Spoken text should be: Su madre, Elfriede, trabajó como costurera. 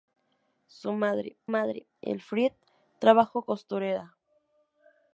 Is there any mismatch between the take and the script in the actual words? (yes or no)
yes